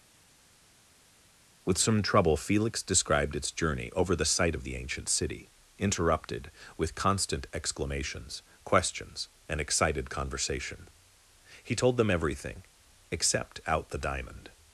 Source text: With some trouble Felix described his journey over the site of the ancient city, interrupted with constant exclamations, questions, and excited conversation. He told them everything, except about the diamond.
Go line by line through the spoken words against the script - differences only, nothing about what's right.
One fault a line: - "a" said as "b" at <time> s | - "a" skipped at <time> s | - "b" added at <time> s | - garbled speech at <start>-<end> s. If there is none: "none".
- "his" said as "its" at 3.3 s
- "about" said as "out" at 13.7 s